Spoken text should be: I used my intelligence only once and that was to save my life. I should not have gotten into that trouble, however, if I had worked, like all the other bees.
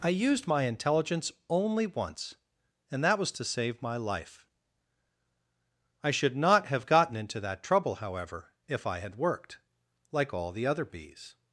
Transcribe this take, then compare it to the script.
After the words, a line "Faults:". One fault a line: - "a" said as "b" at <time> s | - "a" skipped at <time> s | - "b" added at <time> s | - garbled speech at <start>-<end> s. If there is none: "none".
I used my intelligence only once and that was to save my life. I should not have gotten into that trouble, however, if I had worked, like all the other bees.
Faults:
none